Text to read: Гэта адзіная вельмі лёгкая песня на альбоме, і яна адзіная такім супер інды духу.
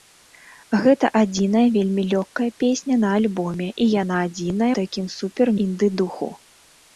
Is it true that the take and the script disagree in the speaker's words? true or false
false